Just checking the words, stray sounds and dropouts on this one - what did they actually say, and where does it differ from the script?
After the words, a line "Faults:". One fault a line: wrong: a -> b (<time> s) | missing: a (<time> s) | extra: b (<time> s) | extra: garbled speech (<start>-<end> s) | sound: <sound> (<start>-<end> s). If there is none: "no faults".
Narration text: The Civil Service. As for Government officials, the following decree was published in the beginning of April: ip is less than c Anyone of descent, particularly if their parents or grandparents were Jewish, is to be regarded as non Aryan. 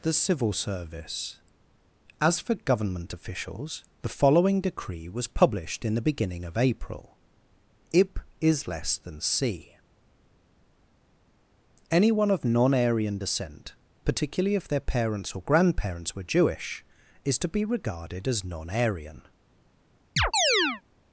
The Civil Service. As for Government officials, the following decree was published in the beginning of April: ip is less than c Anyone of non Aryan descent, particularly if their parents or grandparents were Jewish, is to be regarded as non Aryan.
Faults:
extra: non Aryan (12.4 s)
sound: chirp (20.2-20.8 s)